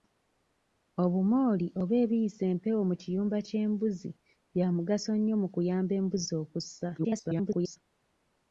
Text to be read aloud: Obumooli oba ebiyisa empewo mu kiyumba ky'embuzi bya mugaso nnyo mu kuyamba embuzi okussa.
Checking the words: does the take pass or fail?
fail